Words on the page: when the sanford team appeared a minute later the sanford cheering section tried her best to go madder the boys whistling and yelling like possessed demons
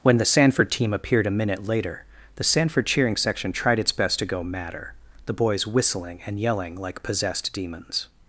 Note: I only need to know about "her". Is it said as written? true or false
false